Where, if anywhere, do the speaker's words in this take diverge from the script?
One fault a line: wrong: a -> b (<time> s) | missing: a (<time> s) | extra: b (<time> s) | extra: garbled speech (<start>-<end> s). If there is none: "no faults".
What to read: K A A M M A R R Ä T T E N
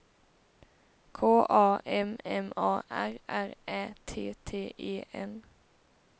missing: A (1.8 s)